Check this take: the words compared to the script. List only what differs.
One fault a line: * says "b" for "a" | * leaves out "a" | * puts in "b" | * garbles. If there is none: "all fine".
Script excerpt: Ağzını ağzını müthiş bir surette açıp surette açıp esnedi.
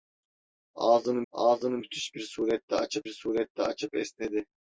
all fine